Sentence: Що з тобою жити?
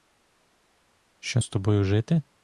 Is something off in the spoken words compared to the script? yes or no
no